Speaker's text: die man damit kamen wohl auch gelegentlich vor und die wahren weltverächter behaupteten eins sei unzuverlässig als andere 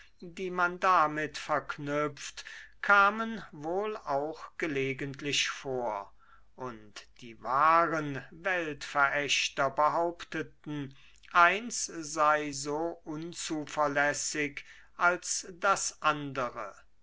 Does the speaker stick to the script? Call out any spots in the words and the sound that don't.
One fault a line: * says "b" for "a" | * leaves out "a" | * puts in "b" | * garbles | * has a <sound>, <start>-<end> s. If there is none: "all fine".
* puts in "verknüpft"
* puts in "so"
* puts in "das"